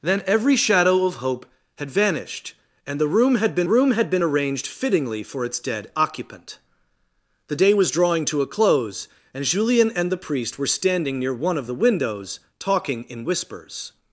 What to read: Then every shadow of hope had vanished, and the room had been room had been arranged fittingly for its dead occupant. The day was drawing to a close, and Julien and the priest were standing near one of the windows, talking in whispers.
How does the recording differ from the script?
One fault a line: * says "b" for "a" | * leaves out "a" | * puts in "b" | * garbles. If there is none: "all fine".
all fine